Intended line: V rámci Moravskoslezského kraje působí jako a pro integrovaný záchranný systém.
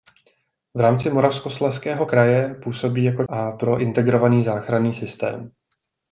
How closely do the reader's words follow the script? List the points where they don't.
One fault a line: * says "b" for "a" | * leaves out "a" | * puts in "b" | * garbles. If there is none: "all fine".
all fine